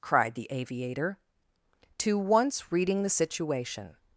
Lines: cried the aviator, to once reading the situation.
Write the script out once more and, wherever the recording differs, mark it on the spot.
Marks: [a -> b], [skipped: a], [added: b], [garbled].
cried the aviator, to once reading the situation.